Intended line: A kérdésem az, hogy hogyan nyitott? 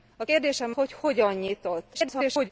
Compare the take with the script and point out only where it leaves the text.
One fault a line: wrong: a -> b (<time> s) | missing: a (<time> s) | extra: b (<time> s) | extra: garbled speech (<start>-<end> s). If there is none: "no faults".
missing: az (0.7 s)
extra: garbled speech (1.9-2.5 s)